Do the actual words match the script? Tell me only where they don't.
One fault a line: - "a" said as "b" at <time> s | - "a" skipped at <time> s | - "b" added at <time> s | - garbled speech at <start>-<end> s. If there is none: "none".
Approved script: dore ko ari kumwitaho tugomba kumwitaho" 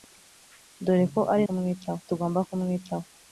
none